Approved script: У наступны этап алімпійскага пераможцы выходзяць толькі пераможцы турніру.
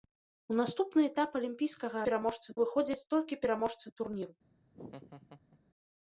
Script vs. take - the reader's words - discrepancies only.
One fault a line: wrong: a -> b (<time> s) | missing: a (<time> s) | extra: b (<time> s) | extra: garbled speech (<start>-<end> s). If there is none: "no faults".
no faults